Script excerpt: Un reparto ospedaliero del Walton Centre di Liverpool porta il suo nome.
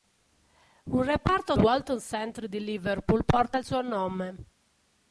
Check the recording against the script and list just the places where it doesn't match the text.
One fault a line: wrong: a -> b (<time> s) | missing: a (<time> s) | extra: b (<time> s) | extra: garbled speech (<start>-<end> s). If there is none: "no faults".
missing: ospedaliero del (1.5 s)